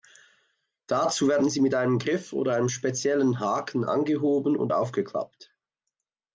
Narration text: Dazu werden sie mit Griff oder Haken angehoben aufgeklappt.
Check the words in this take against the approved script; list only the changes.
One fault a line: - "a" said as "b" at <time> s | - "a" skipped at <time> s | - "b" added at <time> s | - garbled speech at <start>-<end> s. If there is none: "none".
- "einem" added at 1.8 s
- "einem speziellen" added at 2.5 s
- "und" added at 4.6 s